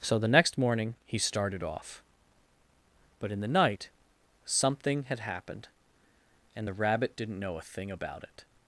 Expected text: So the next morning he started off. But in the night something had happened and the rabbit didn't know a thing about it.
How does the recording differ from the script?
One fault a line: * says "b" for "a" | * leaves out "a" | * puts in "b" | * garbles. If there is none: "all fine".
all fine